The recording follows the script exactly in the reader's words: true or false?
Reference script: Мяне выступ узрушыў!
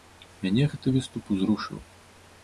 false